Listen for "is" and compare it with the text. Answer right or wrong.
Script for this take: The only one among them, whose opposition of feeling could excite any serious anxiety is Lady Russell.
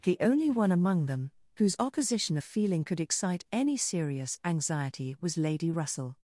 wrong